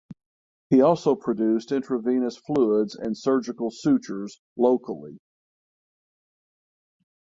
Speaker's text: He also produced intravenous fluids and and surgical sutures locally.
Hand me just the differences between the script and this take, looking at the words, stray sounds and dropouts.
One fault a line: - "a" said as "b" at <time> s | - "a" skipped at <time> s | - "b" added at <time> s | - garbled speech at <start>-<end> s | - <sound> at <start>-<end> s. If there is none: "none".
- "and" skipped at 3.1 s